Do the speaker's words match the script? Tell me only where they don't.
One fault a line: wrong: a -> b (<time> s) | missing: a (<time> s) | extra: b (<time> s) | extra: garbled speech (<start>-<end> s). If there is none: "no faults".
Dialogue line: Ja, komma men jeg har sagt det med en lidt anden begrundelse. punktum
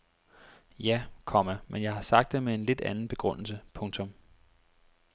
no faults